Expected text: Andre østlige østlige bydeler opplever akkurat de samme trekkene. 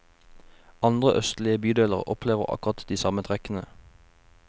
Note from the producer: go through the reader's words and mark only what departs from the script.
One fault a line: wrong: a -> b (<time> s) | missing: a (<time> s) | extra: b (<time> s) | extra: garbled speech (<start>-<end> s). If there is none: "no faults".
missing: østlige (1.6 s)